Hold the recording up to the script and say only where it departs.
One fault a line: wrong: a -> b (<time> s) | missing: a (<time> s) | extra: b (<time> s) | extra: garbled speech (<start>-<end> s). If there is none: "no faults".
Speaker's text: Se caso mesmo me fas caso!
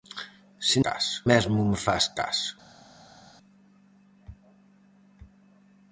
no faults